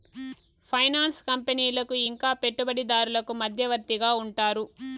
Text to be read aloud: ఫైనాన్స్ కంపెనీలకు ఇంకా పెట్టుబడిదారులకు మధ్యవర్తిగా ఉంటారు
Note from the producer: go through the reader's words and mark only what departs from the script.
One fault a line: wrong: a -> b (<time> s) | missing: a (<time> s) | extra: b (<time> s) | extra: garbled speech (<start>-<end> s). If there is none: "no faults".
no faults